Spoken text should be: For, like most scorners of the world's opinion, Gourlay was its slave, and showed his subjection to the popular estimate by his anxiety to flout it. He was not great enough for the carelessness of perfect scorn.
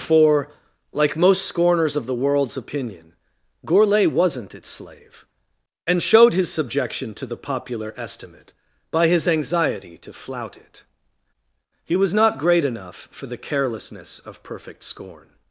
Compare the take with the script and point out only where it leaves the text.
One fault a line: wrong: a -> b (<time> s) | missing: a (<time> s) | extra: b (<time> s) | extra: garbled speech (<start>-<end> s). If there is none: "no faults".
wrong: was -> wasn't (4.1 s)